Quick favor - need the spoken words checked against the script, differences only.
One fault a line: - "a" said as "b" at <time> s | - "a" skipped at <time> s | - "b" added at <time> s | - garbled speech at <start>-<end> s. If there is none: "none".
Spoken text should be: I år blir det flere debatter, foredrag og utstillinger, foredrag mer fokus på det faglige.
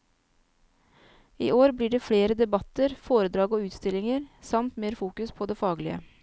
- "foredrag" said as "samt" at 4.4 s